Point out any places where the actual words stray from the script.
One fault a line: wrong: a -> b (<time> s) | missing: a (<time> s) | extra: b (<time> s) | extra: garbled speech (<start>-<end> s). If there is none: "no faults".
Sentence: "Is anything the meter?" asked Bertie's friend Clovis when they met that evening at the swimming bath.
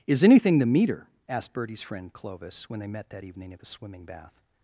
no faults